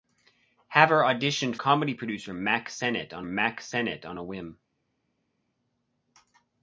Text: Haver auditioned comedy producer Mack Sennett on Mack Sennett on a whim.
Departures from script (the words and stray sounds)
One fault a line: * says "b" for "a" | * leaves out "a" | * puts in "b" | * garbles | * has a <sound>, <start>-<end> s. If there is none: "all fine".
all fine